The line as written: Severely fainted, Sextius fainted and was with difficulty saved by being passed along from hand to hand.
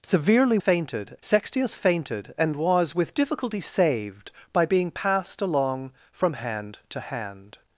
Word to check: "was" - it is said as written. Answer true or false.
true